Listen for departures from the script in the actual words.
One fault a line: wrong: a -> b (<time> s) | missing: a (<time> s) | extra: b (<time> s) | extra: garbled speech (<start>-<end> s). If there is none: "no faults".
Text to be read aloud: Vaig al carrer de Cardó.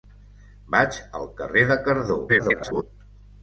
extra: garbled speech (2.3-2.8 s)